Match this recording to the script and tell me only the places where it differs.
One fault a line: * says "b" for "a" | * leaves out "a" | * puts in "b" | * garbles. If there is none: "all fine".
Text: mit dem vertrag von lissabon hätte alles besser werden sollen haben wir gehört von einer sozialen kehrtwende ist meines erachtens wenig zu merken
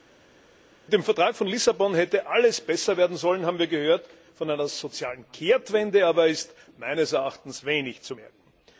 * puts in "aber"